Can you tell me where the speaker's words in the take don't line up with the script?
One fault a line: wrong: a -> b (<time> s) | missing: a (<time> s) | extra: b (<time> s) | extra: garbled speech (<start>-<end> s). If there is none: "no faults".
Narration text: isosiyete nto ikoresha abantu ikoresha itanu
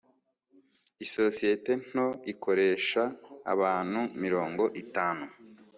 wrong: ikoresha -> mirongo (4.2 s)